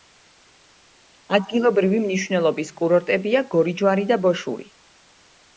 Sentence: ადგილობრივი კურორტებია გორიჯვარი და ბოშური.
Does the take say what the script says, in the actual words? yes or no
no